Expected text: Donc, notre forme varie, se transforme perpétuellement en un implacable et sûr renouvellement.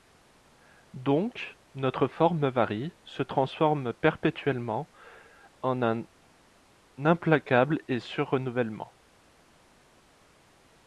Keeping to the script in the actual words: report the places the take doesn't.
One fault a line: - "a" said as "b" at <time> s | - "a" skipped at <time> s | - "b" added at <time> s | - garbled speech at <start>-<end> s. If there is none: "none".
none